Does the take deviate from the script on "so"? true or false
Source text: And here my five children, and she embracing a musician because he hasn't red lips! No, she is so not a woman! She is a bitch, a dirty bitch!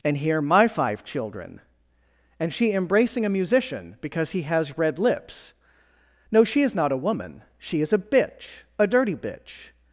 true